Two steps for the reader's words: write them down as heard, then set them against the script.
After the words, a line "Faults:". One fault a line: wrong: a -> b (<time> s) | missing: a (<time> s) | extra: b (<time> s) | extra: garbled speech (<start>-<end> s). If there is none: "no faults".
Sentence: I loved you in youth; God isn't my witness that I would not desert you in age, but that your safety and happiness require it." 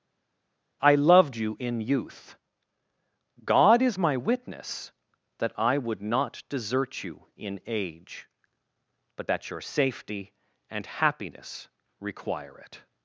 I loved you in youth; God is my witness that I would not desert you in age, but that your safety and happiness require it."
Faults:
wrong: isn't -> is (3.8 s)